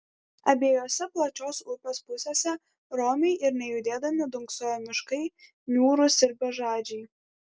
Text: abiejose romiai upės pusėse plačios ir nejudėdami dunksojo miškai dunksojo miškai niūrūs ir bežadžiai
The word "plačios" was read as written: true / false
false